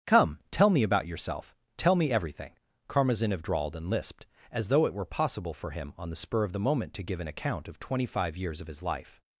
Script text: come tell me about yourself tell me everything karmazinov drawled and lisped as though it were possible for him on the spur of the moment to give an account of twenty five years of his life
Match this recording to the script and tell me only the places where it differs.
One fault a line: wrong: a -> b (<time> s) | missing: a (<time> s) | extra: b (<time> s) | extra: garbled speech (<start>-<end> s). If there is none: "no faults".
no faults